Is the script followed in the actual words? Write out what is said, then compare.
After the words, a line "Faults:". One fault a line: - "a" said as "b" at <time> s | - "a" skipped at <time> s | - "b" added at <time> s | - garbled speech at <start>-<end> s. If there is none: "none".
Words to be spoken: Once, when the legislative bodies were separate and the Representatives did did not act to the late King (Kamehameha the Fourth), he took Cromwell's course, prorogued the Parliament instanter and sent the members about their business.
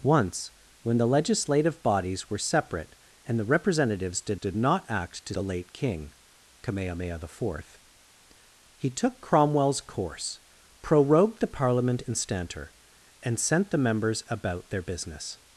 Once, when the legislative bodies were separate and the Representatives did did not act to the late King (Kamehameha the Fourth), he took Cromwell's course, prorogued the Parliament instanter and sent the members about their business.
Faults:
none